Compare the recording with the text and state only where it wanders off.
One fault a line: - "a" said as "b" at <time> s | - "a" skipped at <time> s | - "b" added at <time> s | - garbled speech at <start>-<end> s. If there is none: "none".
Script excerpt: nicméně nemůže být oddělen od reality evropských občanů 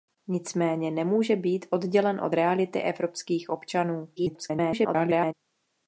- garbled speech at 4.2-5.3 s